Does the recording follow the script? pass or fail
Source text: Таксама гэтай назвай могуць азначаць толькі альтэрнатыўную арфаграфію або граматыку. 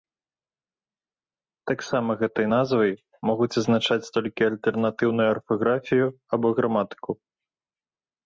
pass